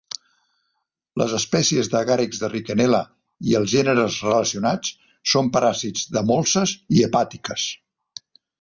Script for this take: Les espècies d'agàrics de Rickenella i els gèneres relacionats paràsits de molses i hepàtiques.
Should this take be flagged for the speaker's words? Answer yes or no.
yes